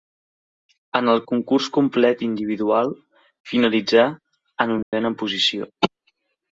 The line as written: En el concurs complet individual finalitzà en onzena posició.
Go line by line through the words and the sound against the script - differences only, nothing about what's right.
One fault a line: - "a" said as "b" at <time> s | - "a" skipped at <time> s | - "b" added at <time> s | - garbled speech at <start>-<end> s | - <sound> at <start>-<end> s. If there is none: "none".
- dropout at 4.8-4.9 s